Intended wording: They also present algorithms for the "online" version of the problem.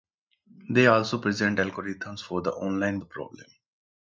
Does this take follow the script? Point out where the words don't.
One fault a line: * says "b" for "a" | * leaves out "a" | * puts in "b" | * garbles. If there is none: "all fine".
* leaves out "version of"